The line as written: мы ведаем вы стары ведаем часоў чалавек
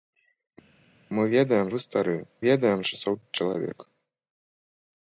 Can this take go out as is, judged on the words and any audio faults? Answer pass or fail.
pass